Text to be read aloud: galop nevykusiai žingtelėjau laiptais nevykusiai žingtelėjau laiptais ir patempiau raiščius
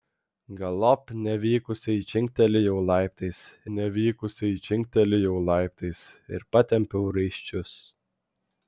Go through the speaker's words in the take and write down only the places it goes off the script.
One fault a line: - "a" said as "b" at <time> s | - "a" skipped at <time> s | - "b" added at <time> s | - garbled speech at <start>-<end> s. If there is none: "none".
none